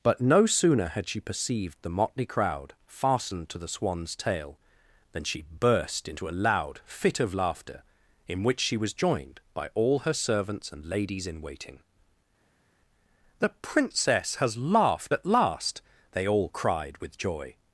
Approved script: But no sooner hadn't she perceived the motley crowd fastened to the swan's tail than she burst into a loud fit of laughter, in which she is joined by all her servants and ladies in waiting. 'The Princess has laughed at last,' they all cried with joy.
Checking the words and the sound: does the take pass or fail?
fail